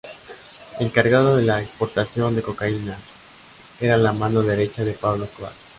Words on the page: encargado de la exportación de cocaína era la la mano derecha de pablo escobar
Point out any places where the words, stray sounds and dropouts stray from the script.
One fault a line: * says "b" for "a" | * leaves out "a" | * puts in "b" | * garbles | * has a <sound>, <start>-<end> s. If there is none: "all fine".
* leaves out "la"